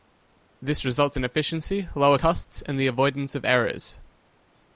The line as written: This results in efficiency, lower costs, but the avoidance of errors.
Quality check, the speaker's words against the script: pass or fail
fail